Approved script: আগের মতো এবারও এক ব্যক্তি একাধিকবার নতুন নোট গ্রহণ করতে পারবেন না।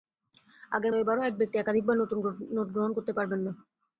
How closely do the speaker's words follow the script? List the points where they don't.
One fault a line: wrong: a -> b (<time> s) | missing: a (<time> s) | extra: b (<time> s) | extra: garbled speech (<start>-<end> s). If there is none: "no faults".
missing: মতো (0.9 s)